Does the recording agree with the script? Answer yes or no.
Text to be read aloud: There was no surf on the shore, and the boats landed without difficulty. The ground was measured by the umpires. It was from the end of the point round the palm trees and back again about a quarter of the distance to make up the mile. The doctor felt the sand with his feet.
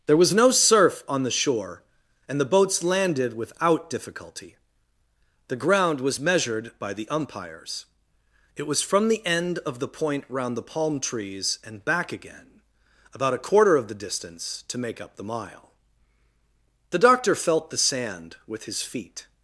yes